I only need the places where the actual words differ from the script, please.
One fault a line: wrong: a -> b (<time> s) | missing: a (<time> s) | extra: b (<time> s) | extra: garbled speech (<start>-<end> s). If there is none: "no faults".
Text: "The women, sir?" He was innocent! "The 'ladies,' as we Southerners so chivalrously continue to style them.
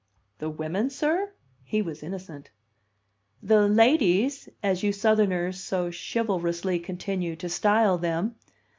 wrong: we -> you (4.8 s)